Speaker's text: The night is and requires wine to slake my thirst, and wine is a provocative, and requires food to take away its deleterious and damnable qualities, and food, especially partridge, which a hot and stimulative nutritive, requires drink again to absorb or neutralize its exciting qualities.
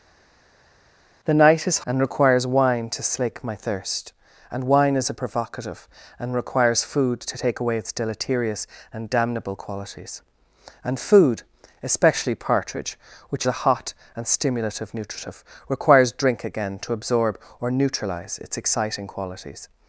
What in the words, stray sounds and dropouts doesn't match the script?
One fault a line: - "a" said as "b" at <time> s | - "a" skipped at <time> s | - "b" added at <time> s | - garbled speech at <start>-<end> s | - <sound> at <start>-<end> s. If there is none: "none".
none